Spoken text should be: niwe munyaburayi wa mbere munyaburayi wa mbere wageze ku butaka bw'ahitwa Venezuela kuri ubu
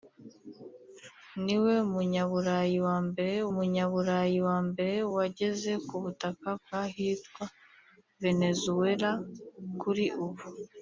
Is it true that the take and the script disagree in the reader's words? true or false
false